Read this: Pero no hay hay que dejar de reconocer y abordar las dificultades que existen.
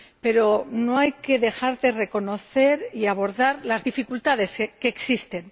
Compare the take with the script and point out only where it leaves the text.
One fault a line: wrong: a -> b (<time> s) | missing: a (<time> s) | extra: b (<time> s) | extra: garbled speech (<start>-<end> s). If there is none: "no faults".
missing: hay (1.1 s)